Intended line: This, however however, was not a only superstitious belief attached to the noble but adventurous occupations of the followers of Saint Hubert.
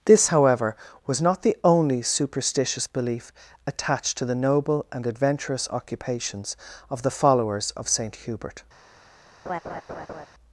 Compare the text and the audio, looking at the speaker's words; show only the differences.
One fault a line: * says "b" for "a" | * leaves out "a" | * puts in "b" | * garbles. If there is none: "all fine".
* leaves out "however"
* says "the" for "a"
* says "and" for "but"